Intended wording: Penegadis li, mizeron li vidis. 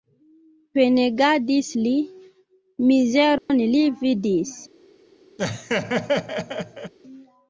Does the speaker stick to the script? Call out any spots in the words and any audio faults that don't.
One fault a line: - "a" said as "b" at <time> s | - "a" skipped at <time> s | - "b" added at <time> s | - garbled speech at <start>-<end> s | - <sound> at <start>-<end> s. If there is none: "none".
- dropout at 3.4-3.5 s
- laugh at 5.4-6.9 s